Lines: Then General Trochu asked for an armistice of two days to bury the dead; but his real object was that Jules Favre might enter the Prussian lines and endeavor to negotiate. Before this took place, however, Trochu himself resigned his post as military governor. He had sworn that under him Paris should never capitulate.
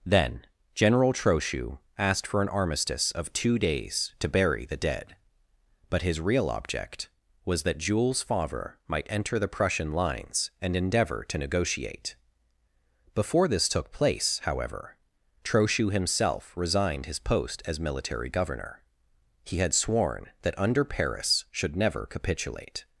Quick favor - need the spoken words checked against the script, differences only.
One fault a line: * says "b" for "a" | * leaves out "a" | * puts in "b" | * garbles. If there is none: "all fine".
* leaves out "him"